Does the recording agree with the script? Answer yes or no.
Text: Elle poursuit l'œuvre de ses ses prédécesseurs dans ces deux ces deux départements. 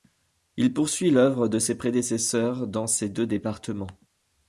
no